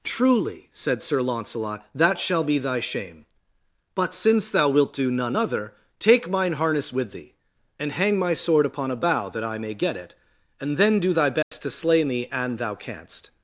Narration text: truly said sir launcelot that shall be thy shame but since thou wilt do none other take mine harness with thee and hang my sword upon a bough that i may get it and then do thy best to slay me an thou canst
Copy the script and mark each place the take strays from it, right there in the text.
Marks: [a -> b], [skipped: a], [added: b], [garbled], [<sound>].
truly said sir launcelot that shall be thy shame but since thou wilt do none other take mine harness with thee and hang my sword upon a bough that i may get it and then do thy best [dropout] to slay me an thou canst